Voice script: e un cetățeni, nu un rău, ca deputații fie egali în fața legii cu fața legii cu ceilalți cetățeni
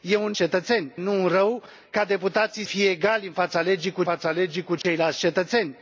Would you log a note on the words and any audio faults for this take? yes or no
yes